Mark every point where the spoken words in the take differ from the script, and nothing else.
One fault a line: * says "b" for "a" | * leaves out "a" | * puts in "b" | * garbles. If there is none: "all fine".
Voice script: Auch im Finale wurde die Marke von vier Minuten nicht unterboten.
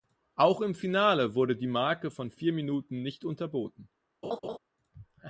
all fine